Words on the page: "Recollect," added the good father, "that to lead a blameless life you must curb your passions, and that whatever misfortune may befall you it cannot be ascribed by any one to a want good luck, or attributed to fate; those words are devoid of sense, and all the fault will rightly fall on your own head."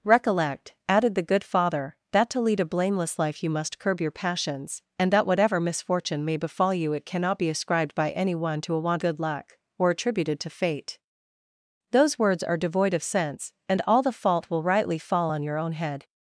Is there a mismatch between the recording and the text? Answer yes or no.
no